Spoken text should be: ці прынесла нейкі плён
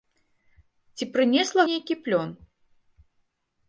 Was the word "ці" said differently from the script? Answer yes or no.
no